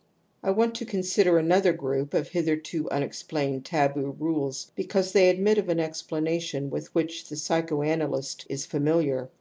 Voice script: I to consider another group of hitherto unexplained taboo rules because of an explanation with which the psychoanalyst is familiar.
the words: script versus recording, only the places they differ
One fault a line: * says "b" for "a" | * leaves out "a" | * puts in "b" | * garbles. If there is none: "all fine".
* puts in "want"
* puts in "they admit"